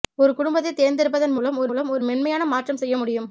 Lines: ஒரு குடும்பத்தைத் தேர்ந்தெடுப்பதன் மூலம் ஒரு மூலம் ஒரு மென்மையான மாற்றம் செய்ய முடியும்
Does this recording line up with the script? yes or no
yes